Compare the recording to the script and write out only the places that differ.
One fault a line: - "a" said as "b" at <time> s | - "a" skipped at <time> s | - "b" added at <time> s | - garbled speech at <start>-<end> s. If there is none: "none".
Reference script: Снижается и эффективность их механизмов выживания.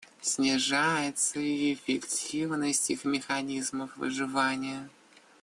none